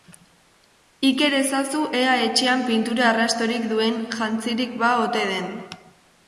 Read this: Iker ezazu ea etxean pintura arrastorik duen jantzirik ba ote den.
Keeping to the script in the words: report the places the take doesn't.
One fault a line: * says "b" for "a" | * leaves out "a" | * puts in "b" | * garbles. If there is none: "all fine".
all fine